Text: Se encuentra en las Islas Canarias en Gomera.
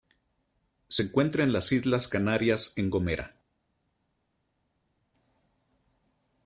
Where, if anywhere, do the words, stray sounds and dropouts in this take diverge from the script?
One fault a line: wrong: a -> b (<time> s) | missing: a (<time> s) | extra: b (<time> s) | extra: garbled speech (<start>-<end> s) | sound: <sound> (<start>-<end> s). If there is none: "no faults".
no faults